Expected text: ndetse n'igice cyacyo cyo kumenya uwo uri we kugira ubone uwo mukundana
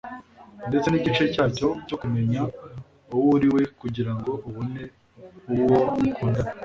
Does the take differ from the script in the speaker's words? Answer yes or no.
yes